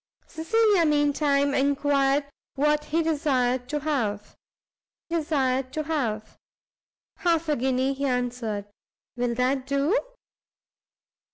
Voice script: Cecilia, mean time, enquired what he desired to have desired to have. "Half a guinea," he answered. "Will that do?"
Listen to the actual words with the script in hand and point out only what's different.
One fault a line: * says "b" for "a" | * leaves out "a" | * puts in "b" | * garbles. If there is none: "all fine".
all fine